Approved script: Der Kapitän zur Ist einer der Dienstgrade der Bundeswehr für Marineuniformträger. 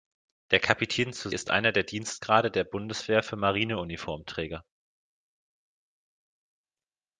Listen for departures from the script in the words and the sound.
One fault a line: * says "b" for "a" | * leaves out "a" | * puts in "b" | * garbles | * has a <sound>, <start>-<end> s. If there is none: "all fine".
all fine